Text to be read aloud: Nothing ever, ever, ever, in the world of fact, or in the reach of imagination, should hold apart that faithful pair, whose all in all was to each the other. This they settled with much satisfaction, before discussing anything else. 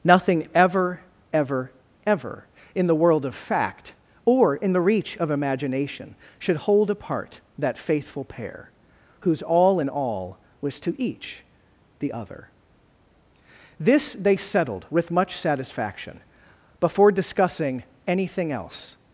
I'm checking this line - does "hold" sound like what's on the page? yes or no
yes